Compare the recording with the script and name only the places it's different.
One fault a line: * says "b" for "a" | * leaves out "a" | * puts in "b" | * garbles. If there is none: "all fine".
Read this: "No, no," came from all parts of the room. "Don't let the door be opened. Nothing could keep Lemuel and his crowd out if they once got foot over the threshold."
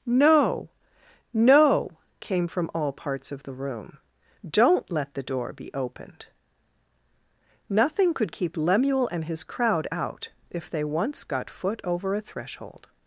* says "a" for "the"